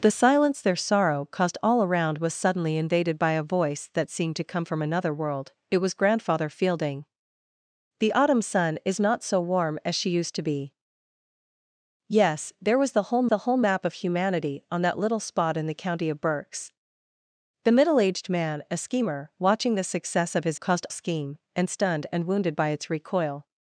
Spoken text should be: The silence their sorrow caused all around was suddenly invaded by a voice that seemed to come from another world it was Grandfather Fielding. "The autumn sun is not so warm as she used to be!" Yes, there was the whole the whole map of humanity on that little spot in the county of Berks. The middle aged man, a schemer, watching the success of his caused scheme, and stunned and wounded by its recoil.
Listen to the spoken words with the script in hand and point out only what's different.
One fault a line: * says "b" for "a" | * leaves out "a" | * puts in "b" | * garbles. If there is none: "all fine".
all fine